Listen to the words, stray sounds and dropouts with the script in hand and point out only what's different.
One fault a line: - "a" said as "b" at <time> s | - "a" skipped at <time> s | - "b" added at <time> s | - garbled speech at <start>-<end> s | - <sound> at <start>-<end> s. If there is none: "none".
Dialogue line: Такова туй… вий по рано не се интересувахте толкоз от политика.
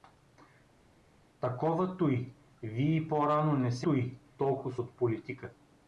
- "интересувахте" said as "туй" at 3.8 s